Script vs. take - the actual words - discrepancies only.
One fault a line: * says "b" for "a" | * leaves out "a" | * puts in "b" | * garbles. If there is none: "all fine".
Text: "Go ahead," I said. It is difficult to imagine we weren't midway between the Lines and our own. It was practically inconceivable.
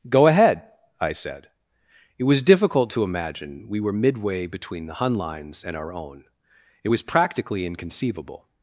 * says "was" for "is"
* says "were" for "weren't"
* puts in "Hun"